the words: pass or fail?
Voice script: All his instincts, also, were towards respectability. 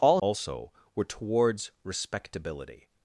fail